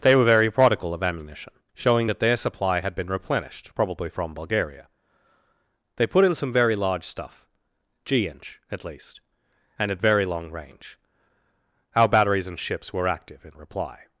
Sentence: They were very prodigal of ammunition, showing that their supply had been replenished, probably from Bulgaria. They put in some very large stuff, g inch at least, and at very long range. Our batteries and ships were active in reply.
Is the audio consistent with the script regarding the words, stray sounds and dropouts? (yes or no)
yes